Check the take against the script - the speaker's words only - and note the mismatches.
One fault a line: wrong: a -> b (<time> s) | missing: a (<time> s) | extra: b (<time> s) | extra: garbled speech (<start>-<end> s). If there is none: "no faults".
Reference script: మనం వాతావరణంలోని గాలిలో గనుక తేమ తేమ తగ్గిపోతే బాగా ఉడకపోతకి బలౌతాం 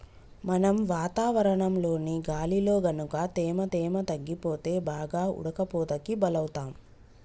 no faults